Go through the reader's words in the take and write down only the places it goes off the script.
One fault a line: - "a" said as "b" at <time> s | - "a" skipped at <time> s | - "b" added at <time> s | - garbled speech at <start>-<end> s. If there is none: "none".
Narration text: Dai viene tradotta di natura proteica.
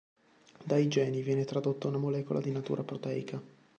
- "geni" added at 0.9 s
- "una molecola" added at 1.9 s